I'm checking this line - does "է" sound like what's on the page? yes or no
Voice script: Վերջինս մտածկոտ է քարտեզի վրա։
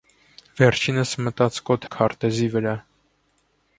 yes